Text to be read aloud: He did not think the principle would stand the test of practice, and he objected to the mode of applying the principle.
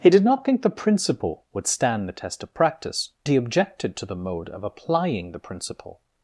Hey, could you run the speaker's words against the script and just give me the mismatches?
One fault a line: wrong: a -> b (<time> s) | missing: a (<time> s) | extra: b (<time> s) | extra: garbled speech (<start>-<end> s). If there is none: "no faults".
missing: and (3.1 s)